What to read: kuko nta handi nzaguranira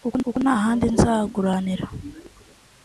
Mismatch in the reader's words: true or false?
true